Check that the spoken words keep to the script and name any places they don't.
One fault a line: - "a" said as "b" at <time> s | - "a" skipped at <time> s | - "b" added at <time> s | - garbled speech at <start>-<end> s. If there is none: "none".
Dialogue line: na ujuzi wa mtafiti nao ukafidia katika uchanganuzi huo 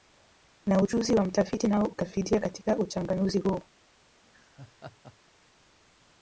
none